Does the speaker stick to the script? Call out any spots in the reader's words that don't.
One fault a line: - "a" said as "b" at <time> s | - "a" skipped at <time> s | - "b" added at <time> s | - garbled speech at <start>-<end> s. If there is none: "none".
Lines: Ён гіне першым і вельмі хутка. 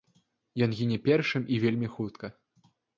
none